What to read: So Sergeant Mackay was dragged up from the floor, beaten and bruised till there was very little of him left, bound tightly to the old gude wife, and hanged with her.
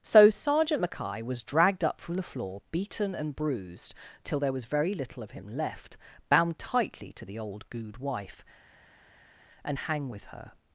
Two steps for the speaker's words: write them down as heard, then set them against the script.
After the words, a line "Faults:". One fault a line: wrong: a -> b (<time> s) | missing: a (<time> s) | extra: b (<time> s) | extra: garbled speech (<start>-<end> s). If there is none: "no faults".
So Sergeant Mackay was dragged up from the floor, beaten and bruised till there was very little of him left, bound tightly to the old gude wife, and hang with her.
Faults:
wrong: hanged -> hang (9.7 s)